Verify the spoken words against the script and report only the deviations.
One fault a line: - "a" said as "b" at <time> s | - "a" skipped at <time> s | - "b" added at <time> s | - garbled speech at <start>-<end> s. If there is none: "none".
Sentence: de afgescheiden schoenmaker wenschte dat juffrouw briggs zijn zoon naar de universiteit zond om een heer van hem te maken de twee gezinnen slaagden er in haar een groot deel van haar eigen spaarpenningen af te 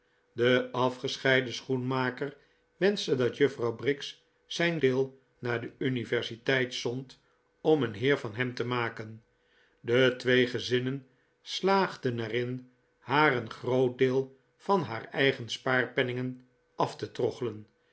- "zoon" said as "deel" at 4.8 s